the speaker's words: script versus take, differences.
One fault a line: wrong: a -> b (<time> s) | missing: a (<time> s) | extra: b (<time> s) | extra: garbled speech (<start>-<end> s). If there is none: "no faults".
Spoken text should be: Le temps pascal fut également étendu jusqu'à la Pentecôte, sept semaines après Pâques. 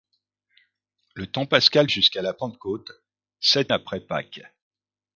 missing: fut également étendu (1.9 s)
missing: semaines (3.7 s)